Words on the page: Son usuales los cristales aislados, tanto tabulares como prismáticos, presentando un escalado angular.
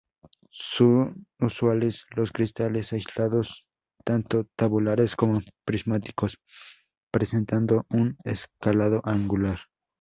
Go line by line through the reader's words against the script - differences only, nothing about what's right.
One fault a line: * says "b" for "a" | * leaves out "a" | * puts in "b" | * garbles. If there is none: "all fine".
all fine